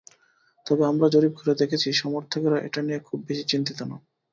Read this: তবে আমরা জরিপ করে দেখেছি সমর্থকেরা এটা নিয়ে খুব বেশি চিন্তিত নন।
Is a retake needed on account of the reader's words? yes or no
no